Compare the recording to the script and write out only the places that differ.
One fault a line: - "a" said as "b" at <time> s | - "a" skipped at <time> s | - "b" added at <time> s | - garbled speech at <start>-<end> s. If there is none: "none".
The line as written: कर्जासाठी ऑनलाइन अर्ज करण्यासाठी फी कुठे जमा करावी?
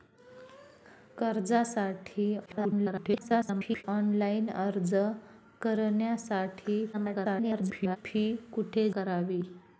- garbled speech at 2.5-3.8 s
- garbled speech at 6.9-8.0 s
- "जमा" skipped at 8.9 s